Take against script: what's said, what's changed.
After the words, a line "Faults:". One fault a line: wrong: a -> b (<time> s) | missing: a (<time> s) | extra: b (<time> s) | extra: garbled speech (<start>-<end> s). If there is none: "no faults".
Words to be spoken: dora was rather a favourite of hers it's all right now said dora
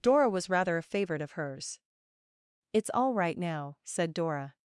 dora was rather a favourite of hers it's all right now said dora
Faults:
no faults